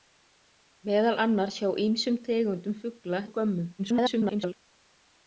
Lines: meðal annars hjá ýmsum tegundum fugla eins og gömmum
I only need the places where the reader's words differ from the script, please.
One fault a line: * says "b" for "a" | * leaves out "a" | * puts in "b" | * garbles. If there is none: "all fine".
* leaves out "eins"
* garbles